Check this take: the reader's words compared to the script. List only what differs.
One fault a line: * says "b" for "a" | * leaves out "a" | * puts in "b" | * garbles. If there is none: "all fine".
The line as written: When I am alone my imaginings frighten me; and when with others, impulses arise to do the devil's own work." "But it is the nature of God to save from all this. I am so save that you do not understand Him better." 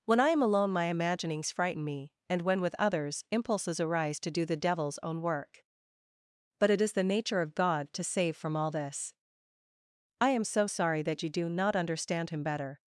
* says "sorry" for "save"